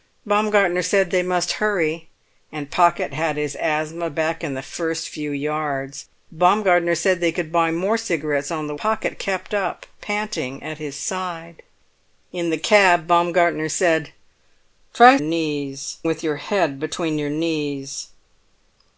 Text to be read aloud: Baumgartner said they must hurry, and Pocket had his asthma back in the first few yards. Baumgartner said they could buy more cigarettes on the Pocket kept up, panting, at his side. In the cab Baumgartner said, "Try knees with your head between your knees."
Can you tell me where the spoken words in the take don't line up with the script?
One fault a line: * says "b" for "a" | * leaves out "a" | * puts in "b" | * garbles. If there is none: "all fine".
all fine